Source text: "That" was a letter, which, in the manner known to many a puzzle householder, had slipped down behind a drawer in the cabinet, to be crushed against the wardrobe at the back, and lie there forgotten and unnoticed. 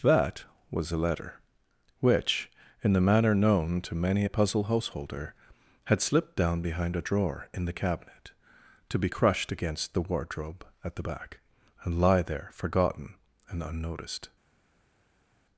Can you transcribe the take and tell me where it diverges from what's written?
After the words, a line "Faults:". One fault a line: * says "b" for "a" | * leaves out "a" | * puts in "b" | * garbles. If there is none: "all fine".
"That" was a letter, which, in the manner known to many a puzzle householder, had slipped down behind a drawer in the cabinet, to be crushed against the wardrobe at the back, and lie there forgotten and unnoticed.
Faults:
all fine